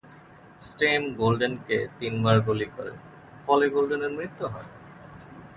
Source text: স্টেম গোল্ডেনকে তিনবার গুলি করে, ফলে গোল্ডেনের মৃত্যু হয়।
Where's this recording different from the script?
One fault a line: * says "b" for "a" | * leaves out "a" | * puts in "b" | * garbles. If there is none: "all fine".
all fine